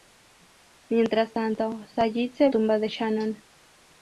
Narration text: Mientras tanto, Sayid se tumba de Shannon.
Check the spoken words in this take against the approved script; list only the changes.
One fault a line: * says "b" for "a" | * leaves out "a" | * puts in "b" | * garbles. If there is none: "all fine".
all fine